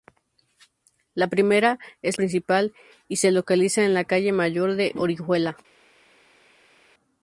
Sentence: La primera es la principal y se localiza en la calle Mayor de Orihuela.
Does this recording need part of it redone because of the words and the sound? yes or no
yes